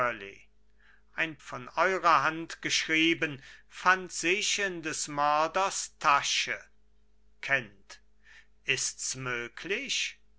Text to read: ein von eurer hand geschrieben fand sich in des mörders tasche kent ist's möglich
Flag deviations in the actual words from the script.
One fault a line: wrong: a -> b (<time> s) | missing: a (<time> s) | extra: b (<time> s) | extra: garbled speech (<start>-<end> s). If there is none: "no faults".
no faults